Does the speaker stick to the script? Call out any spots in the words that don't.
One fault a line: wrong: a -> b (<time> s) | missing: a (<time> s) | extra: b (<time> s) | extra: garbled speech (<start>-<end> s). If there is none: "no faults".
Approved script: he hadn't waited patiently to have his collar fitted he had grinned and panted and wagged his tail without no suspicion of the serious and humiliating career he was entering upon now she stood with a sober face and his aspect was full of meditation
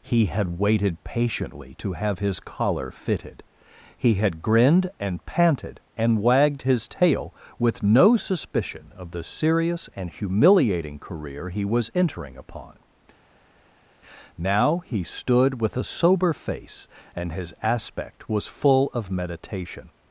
wrong: hadn't -> had (0.2 s)
wrong: without -> with (7.6 s)
wrong: she -> he (14.8 s)